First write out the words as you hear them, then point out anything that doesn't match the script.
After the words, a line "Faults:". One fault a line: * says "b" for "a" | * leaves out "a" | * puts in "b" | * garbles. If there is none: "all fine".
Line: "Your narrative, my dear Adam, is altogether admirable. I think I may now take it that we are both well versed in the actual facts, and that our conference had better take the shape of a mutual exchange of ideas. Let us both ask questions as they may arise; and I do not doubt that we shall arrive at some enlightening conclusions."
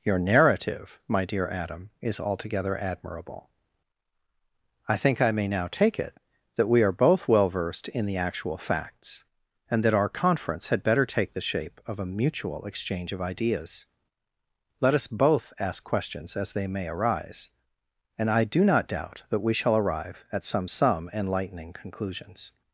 "Your narrative, my dear Adam, is altogether admirable. I think I may now take it that we are both well versed in the actual facts, and that our conference had better take the shape of a mutual exchange of ideas. Let us both ask questions as they may arise; and I do not doubt that we shall arrive at some some enlightening conclusions."
Faults:
* puts in "some"